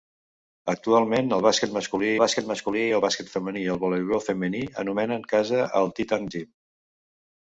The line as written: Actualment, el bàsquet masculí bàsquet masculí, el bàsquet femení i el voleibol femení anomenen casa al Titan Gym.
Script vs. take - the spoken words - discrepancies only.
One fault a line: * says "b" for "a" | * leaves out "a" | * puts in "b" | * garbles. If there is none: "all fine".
all fine